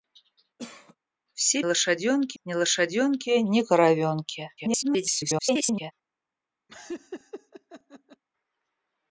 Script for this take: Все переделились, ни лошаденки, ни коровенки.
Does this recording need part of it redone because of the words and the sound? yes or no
yes